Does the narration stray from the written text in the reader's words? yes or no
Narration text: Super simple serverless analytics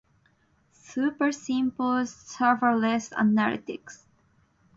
no